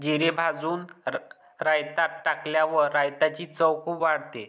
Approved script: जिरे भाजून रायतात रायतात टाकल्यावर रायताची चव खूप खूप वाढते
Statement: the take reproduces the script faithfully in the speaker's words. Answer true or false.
false